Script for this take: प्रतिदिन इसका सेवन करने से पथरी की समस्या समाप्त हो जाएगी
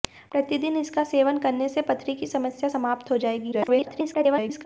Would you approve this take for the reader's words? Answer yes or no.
no